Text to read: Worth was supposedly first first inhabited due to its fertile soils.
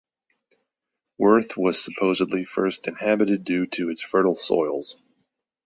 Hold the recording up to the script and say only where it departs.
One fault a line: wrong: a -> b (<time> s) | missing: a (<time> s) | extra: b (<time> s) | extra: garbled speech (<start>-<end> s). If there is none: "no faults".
missing: first (2.9 s)